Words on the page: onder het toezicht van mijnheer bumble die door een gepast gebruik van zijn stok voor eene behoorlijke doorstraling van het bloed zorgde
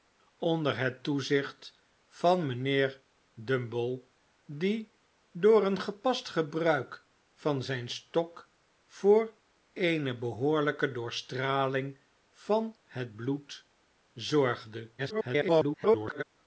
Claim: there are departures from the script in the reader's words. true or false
true